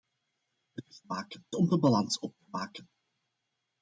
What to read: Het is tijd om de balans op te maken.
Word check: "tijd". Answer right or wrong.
wrong